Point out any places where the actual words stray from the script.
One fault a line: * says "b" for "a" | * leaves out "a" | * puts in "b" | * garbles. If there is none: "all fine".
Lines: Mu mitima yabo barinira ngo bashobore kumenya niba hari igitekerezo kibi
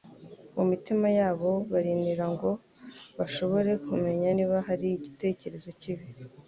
all fine